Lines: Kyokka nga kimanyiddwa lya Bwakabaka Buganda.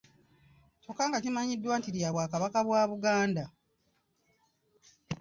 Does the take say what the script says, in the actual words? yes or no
no